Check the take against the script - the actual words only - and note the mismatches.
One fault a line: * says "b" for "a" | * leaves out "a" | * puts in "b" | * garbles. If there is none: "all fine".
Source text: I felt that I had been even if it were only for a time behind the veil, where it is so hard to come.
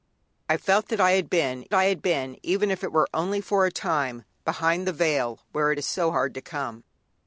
* puts in "I had been"